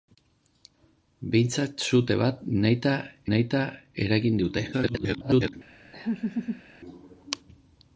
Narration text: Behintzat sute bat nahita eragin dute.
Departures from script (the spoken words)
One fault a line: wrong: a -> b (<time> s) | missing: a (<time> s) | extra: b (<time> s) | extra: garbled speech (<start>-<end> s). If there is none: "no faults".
extra: nahita (3.3 s)
extra: garbled speech (4.7-5.5 s)